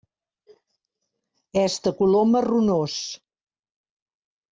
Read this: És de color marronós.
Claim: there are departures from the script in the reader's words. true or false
false